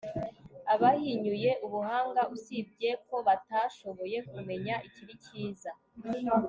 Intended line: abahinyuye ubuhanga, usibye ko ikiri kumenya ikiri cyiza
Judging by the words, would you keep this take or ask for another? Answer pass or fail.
fail